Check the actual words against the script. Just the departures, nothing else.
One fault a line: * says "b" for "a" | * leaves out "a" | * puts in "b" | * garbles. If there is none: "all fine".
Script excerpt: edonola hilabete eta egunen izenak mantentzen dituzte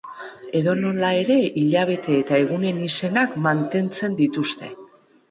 * puts in "ere"